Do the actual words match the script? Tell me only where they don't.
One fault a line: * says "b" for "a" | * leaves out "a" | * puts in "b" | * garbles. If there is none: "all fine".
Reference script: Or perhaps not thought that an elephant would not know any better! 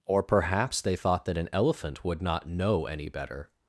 * says "they" for "not"